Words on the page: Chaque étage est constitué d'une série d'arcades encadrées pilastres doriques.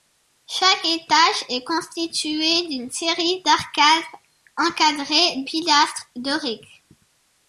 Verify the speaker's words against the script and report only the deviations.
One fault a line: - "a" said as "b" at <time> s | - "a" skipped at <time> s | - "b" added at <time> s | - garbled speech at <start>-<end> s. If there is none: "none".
none